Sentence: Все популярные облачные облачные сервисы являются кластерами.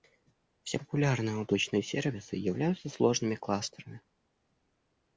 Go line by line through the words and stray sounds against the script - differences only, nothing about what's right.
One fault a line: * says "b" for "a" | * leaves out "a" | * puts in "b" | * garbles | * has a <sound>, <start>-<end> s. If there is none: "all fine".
* leaves out "облачные"
* puts in "сложными"